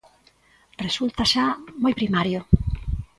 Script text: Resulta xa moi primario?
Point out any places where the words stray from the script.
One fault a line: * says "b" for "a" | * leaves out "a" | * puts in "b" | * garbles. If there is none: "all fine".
all fine